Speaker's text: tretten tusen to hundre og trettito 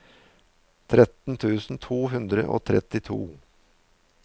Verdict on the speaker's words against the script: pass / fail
pass